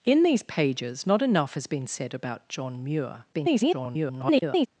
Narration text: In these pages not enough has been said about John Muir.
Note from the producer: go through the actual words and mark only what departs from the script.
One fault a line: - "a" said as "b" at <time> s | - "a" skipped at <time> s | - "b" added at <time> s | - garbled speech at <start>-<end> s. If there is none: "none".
- garbled speech at 3.3-4.7 s